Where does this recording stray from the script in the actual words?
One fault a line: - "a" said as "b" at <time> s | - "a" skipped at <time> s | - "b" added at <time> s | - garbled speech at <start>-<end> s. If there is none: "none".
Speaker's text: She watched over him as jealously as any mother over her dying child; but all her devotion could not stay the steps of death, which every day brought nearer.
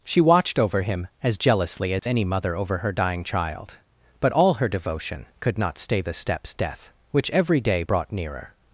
- "of" skipped at 6.5 s